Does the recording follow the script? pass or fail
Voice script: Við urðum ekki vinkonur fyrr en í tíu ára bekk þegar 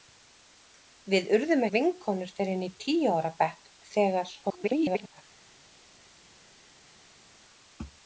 fail